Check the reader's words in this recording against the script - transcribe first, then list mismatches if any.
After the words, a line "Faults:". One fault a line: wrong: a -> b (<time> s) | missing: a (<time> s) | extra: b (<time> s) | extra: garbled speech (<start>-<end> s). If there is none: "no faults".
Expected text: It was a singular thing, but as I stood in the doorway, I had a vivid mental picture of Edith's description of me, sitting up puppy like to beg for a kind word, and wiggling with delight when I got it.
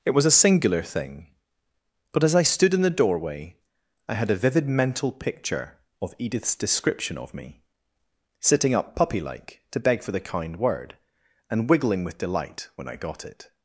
It was a singular thing, but as I stood in the doorway, I had a vivid mental picture of Edith's description of me, sitting up puppy like to beg for the kind word, and wiggling with delight when I got it.
Faults:
wrong: a -> the (10.1 s)